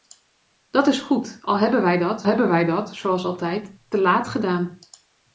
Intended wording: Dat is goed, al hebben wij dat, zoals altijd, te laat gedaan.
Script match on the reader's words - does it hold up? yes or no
no